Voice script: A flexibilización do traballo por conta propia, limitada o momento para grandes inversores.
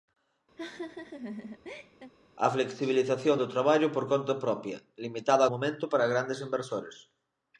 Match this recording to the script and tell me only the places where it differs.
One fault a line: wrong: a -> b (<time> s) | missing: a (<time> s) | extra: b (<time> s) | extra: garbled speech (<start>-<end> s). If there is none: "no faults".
no faults